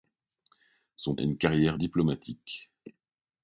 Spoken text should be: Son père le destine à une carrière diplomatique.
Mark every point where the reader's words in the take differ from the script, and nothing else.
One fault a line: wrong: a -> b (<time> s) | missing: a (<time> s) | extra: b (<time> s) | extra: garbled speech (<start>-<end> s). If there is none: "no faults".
missing: père le destine (1.1 s)